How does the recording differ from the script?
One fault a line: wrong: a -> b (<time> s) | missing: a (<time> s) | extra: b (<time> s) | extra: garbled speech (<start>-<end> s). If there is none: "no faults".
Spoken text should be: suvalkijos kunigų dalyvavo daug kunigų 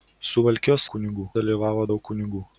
no faults